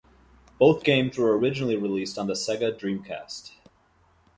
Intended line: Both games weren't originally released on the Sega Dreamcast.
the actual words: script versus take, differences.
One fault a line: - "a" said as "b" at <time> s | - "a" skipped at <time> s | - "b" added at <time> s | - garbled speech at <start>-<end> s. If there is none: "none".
- "weren't" said as "were" at 1.2 s